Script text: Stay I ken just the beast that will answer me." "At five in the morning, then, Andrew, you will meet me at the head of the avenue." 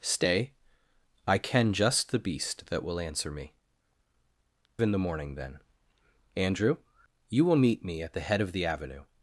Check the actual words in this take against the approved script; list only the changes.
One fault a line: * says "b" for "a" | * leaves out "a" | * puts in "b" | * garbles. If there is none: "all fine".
* leaves out "At five"